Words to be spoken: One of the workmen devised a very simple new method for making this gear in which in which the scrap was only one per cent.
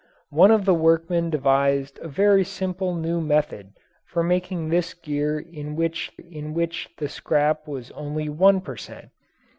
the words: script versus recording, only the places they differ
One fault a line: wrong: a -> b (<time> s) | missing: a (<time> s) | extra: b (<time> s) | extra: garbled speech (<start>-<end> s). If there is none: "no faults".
no faults